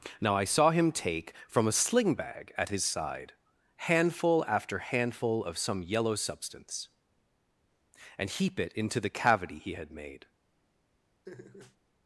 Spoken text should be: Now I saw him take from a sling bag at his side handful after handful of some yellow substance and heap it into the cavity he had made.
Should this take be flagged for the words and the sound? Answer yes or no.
yes